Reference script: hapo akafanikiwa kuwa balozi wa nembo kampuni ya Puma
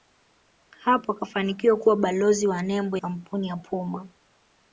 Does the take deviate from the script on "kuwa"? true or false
false